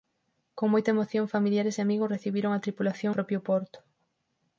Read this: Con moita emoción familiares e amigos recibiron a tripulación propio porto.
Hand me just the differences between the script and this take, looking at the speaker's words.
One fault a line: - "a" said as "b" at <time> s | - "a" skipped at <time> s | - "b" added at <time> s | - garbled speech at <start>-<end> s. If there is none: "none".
none